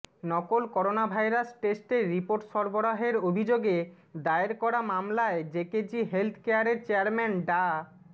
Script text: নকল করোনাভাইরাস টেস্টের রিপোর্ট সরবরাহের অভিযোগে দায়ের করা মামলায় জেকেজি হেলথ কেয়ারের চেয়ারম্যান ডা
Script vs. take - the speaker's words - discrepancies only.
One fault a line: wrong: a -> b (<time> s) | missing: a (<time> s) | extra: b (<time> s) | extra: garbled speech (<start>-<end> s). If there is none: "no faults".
no faults